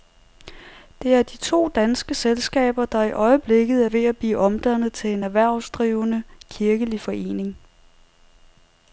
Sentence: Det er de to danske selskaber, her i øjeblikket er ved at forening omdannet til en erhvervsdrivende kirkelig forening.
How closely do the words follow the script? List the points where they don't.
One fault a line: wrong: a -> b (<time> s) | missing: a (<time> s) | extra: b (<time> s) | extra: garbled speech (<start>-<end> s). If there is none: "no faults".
wrong: her -> der (2.9 s)
wrong: forening -> blive (4.2 s)